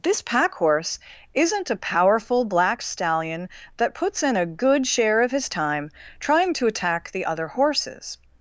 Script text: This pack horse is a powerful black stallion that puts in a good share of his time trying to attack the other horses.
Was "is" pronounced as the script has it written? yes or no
no